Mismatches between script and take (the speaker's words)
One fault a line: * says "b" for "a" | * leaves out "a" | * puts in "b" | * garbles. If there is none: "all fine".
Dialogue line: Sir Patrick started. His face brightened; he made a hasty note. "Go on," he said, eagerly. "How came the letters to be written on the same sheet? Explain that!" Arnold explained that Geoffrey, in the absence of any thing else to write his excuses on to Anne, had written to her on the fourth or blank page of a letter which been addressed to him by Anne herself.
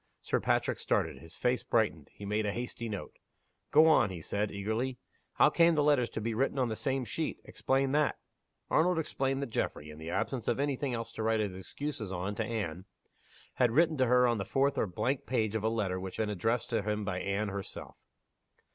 all fine